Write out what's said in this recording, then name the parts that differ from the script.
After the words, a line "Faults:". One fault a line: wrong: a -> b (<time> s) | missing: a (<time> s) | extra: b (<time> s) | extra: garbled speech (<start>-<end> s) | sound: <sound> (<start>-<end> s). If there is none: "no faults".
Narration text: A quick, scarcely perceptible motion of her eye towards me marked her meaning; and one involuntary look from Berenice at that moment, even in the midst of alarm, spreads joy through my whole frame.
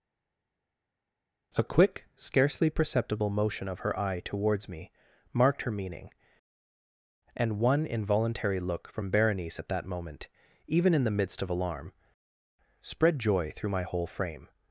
A quick, scarcely perceptible motion of her eye towards me marked her meaning; and one involuntary look from Berenice at that moment, even in the midst of alarm, spread joy through my whole frame.
Faults:
wrong: spreads -> spread (12.8 s)